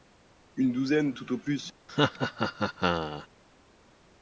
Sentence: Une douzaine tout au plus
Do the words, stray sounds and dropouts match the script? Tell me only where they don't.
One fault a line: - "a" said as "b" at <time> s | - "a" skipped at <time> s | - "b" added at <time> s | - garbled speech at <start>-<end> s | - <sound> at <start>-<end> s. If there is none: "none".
- laugh at 1.9-3.3 s